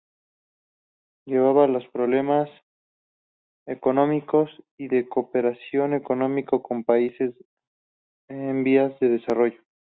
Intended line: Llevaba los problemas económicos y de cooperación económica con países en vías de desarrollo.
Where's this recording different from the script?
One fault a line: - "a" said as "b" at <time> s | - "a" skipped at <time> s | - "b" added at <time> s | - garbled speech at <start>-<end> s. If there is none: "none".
none